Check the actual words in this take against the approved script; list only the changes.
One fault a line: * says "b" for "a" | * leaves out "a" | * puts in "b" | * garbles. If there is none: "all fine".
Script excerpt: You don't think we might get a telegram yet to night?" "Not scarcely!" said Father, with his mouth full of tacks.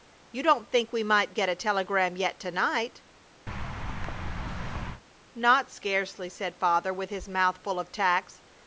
all fine